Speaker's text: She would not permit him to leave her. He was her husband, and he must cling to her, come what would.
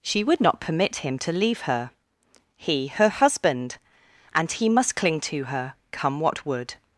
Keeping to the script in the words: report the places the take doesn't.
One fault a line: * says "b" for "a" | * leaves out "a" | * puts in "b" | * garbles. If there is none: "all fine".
* leaves out "was"